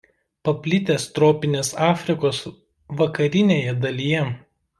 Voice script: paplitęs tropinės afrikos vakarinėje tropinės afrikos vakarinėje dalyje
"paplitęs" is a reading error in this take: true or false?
false